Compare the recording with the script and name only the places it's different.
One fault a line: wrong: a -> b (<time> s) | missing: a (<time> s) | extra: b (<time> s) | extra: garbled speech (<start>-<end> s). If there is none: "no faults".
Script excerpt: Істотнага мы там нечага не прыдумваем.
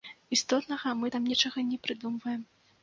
no faults